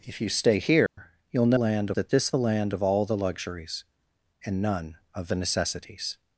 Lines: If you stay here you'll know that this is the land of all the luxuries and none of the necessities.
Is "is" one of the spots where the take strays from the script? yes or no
yes